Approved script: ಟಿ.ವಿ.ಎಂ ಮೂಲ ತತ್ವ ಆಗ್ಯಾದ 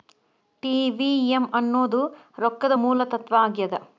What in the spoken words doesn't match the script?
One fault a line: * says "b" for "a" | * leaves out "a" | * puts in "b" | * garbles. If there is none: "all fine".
* puts in "ಅನ್ನೋದ್ ರೊಕ್ಕದ"